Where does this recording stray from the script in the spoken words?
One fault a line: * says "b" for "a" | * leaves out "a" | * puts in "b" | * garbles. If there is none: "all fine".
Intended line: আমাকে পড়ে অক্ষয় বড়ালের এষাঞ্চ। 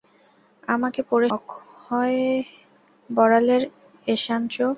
all fine